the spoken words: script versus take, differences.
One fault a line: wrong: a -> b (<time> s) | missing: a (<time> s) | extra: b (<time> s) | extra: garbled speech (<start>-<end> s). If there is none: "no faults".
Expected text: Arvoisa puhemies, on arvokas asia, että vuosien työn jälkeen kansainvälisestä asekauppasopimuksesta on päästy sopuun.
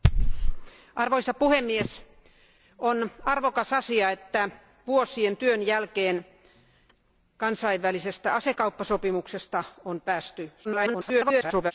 extra: garbled speech (10.6-11.7 s)